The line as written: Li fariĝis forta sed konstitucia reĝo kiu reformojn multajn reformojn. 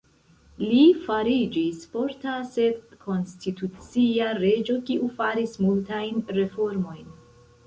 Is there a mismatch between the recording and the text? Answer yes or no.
yes